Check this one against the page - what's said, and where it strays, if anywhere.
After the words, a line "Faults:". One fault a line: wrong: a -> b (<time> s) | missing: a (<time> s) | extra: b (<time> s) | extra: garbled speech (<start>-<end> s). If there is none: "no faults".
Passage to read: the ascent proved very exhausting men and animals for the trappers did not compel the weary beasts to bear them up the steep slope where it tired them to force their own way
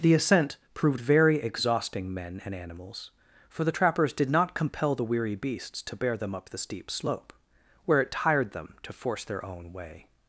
the ascent proved very exhausting men and animals for the trappers did not compel the weary beasts to bear them up the steep slope where it tired them to force their own way
Faults:
no faults